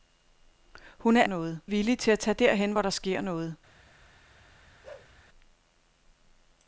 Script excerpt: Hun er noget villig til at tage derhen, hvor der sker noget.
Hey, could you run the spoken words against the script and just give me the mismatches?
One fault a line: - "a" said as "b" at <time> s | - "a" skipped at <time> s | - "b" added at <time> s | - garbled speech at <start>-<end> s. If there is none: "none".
none